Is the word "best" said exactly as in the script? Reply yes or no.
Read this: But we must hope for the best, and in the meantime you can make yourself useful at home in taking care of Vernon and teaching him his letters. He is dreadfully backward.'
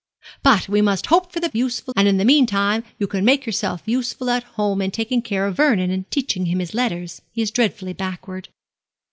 no